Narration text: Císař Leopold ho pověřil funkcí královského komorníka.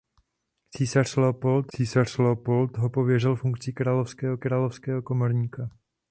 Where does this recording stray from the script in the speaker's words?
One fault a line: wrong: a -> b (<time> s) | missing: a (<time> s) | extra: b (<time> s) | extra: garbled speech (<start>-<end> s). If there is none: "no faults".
extra: císař Leopold (1.7 s)
extra: královského (4.4 s)